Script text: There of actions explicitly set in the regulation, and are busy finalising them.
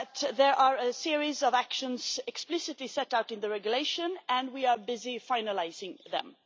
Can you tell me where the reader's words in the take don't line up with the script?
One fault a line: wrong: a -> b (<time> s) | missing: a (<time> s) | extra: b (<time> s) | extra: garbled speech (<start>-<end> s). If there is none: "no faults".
extra: are a series (0.6 s)
extra: out (3.1 s)
extra: we (4.5 s)